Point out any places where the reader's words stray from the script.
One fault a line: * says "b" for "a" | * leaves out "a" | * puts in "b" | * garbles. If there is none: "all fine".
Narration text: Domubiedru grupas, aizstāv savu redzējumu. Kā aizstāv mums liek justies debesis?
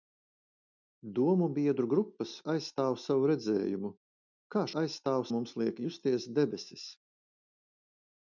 all fine